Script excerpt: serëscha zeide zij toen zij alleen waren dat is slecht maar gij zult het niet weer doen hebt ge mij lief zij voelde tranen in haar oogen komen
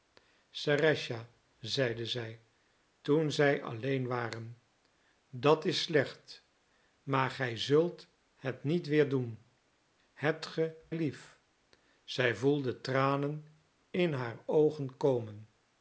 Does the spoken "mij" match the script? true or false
false